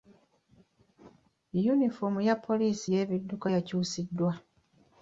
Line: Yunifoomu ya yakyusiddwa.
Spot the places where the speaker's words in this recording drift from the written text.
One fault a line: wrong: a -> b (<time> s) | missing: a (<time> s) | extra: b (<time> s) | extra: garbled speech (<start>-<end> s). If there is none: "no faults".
extra: poliisi y'ebidduka (2.5 s)